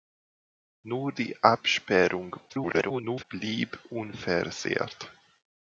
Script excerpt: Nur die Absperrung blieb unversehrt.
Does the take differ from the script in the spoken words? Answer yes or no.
yes